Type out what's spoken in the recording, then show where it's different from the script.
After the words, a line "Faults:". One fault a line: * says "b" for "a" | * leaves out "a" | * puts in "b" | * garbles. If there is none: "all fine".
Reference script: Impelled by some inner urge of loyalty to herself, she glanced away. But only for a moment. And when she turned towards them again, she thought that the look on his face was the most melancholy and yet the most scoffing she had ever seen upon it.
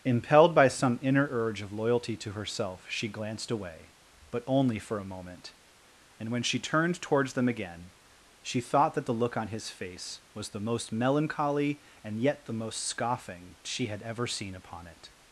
Impelled by some inner urge of loyalty to herself, she glanced away. But only for a moment. And when she turned towards them again, she thought that the look on his face was the most melancholy and yet the most scoffing she had ever seen upon it.
Faults:
all fine